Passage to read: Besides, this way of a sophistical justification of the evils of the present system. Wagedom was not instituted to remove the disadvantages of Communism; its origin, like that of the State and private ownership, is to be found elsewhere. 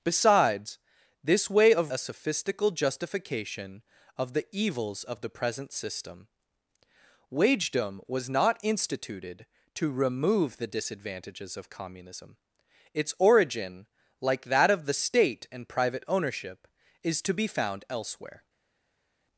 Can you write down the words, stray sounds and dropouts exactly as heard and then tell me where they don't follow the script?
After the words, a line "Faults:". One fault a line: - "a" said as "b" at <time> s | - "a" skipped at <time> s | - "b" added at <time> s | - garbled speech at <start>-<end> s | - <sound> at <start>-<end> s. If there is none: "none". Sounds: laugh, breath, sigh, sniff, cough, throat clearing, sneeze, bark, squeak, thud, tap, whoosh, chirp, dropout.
Besides, this way of a sophistical justification of the evils of the present system. Wagedom was not instituted to remove the disadvantages of Communism; its origin, like that of the State and private ownership, is to be found elsewhere.
Faults:
none